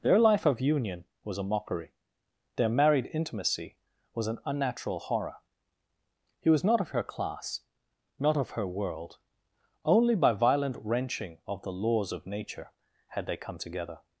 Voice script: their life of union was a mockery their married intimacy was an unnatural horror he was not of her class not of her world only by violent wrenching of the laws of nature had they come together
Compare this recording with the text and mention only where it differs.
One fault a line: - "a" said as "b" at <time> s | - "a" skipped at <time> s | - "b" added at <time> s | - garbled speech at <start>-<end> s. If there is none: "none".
none